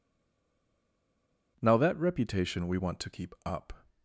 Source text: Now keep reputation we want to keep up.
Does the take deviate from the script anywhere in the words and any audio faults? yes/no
yes